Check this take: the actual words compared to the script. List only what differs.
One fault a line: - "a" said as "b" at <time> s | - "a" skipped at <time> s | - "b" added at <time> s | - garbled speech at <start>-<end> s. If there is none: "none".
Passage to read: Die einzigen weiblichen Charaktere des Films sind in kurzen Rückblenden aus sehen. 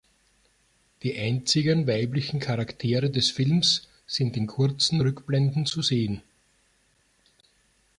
- "aus" said as "zu" at 5.7 s